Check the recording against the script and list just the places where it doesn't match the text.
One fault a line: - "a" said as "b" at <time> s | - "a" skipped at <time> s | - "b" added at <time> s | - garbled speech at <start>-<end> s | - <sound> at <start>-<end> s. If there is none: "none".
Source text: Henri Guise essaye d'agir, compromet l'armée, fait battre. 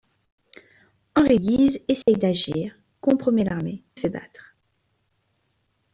- dropout at 2.0-2.1 s